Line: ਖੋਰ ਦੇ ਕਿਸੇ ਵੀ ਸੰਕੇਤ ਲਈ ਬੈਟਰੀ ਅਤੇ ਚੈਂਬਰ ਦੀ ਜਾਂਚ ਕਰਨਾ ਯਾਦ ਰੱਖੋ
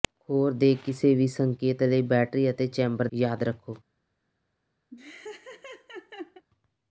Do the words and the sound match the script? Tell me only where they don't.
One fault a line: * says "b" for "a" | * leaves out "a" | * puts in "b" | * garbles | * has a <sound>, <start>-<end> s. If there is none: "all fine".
* leaves out "ਦੀ ਜਾਂਚ ਕਰਨਾ"
* has a laugh, 4.9-6.5 s